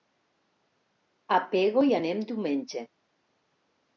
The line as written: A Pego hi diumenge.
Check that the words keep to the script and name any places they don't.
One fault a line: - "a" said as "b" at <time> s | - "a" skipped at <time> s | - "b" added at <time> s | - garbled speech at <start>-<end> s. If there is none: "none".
- "anem" added at 2.0 s